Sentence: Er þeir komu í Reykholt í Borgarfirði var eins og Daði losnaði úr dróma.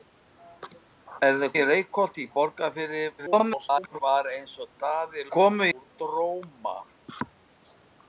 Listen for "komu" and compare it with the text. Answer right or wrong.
wrong